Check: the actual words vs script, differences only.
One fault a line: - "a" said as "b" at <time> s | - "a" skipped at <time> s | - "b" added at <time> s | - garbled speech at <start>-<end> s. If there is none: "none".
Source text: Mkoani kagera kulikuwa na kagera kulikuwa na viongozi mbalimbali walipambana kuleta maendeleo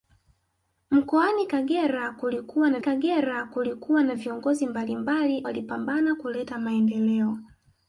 none